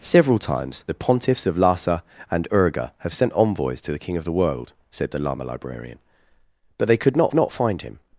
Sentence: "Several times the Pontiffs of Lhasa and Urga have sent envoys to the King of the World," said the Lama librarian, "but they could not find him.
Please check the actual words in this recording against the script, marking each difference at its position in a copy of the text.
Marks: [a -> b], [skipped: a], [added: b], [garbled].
"Several times the Pontiffs of Lhasa and Urga have sent envoys to the King of the World," said the Lama librarian, "but they could not [added: not] find him.